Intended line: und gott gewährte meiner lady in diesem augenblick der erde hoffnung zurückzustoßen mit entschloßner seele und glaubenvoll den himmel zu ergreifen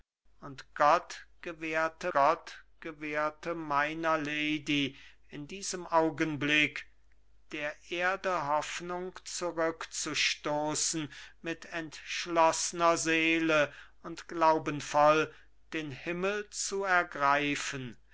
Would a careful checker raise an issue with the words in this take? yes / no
yes